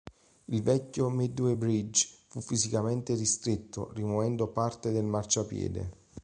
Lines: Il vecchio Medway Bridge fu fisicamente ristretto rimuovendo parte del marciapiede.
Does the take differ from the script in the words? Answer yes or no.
no